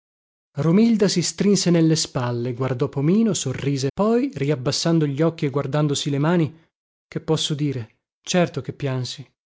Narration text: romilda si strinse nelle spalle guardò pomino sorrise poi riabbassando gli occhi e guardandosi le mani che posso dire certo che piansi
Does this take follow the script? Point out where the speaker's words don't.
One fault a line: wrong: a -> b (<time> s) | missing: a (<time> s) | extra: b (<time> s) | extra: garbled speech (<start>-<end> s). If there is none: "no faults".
no faults